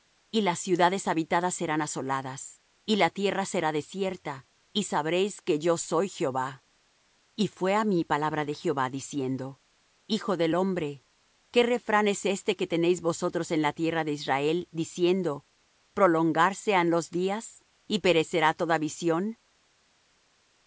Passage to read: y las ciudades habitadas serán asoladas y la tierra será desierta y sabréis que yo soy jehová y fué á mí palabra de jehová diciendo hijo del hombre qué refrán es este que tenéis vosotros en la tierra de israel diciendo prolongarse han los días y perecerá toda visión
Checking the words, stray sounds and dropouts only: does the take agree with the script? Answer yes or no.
yes